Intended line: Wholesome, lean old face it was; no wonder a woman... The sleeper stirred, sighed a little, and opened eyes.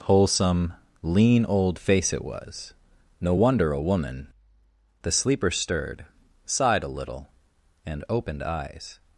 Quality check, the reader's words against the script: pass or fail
pass